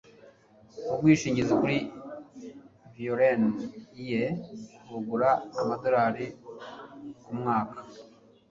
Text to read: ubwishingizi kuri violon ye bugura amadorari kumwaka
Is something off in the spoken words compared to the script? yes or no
no